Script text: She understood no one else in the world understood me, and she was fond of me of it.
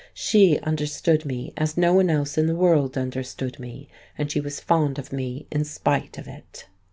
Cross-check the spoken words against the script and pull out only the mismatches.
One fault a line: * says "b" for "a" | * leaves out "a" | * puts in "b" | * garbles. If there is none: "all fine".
* puts in "me as"
* puts in "in spite"